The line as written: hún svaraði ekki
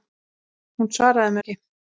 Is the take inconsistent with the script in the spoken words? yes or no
no